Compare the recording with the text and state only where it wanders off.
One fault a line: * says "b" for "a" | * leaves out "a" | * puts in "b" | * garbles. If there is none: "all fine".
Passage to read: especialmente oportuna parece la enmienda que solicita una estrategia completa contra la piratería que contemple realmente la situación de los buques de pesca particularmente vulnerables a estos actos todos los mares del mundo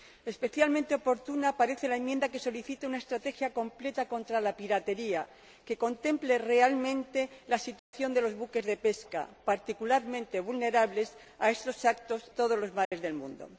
all fine